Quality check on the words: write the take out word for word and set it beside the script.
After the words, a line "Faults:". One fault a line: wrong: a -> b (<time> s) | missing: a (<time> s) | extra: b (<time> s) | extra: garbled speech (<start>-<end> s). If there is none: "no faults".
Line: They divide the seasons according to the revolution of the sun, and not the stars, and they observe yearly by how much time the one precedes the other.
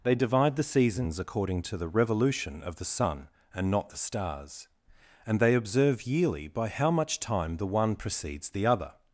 They divide the seasons according to the revolution of the sun, and not the stars, and they observe yearly by how much time the one precedes the other.
Faults:
no faults